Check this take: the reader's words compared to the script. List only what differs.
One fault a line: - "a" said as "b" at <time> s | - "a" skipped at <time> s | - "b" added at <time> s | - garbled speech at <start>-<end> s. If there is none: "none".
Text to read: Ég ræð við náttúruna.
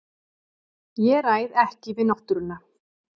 - "ekki" added at 1.6 s